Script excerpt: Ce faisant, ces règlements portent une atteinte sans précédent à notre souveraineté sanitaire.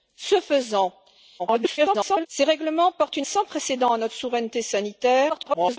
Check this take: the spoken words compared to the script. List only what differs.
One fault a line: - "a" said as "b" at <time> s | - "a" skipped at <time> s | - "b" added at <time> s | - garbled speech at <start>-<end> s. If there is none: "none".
- garbled speech at 1.4-2.3 s
- "atteinte" skipped at 3.3 s
- garbled speech at 5.3-5.8 s